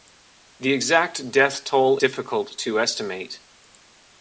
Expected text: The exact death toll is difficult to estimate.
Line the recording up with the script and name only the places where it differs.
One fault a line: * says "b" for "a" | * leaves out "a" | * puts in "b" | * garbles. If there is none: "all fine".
* leaves out "is"